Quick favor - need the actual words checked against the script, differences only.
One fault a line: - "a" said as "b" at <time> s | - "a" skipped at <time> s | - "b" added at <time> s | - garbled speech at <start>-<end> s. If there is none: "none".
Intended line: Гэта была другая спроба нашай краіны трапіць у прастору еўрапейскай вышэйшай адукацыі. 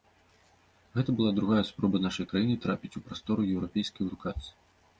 - "вышэйшай" skipped at 4.0 s